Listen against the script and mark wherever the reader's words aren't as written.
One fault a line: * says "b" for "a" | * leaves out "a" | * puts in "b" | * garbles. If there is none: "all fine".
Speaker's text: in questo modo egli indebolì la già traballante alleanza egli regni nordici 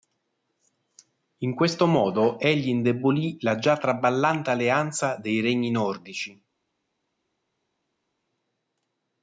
* says "dei" for "egli"